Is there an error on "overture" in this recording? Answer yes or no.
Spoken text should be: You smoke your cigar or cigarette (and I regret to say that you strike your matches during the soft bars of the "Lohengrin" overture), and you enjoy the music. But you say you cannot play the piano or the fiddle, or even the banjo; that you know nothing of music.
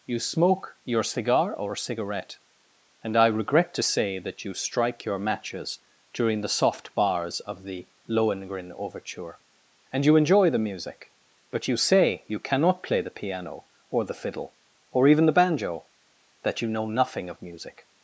no